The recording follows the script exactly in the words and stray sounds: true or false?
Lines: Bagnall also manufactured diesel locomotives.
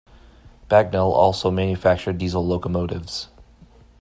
true